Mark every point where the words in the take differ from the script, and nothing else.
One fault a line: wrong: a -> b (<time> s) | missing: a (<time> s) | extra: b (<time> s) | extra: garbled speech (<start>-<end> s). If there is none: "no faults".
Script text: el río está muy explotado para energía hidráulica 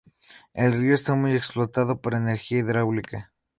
no faults